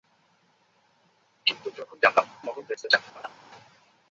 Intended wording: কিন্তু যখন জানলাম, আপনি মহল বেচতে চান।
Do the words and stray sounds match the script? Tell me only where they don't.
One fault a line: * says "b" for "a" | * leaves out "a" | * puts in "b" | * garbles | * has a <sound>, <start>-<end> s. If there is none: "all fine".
* leaves out "আপনি"
* has a laugh, 3.1-3.4 s